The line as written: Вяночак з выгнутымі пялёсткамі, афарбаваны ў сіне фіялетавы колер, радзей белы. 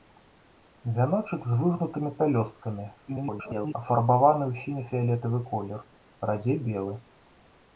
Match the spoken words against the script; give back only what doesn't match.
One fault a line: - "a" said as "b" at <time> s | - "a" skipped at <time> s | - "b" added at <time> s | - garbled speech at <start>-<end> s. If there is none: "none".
- garbled speech at 3.1-3.7 s